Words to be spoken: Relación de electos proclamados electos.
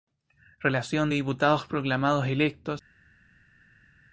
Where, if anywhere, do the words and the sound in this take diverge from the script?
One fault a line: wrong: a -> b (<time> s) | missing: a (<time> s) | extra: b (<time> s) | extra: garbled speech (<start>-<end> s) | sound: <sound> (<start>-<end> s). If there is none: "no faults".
wrong: electos -> diputados (1.1 s)